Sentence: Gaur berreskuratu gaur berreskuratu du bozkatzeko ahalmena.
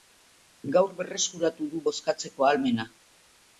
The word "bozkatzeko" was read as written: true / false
true